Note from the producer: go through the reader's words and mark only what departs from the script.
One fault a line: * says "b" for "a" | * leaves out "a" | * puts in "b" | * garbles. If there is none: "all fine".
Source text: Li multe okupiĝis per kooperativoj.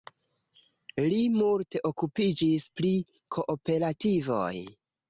* says "pri" for "per"